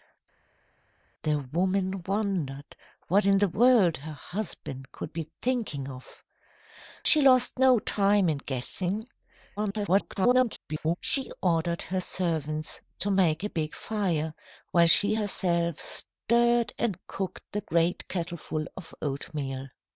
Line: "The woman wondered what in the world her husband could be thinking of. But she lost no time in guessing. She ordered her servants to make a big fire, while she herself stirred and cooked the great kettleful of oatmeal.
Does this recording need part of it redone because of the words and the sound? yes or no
yes